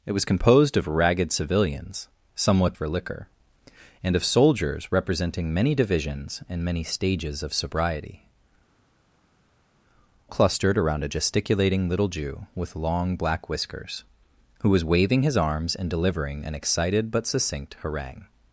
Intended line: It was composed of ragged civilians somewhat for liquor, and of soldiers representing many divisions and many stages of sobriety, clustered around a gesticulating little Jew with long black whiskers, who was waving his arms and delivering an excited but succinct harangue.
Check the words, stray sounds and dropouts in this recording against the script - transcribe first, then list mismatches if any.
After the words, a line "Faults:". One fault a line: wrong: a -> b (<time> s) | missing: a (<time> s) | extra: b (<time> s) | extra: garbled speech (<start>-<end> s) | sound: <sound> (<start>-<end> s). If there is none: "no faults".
It was composed of ragged civilians somewhat for liquor, and of soldiers representing many divisions and many stages of sobriety, clustered around a gesticulating little Jew with long black whiskers, who was waving his arms and delivering an excited but succinct harangue.
Faults:
no faults